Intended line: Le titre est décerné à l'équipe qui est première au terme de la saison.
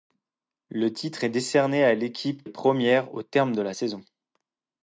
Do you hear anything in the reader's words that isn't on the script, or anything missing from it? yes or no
yes